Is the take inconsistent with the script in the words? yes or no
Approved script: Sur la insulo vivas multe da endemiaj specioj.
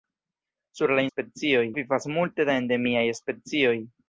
yes